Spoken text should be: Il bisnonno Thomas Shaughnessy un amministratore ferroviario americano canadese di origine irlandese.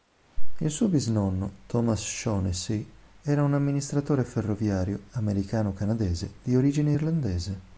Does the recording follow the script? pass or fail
fail